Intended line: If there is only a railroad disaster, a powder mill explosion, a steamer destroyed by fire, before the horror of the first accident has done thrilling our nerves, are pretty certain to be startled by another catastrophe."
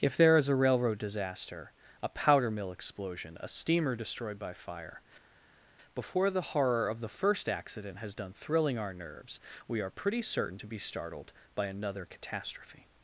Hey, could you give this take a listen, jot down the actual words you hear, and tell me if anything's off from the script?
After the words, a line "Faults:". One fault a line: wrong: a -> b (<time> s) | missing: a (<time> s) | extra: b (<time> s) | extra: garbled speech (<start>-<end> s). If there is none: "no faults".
If there is a railroad disaster, a powder mill explosion, a steamer destroyed by fire, before the horror of the first accident has done thrilling our nerves, we are pretty certain to be startled by another catastrophe."
Faults:
missing: only (0.5 s)
extra: we (9.7 s)